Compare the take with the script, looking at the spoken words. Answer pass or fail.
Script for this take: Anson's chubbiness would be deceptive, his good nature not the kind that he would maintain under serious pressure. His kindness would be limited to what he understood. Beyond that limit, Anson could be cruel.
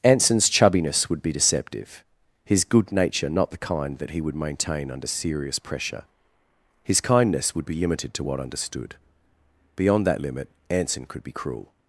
fail